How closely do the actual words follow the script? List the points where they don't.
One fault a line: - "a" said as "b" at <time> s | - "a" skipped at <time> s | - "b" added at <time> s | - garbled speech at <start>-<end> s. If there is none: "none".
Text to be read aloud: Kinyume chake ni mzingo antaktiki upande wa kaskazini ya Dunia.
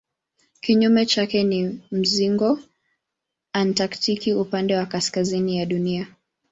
none